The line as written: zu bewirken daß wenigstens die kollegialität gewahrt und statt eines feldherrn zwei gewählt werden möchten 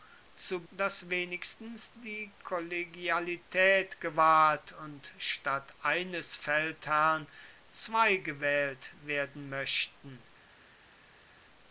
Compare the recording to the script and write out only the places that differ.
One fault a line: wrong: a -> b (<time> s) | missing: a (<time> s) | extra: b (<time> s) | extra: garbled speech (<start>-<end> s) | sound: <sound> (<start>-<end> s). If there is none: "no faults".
missing: bewirken (0.7 s)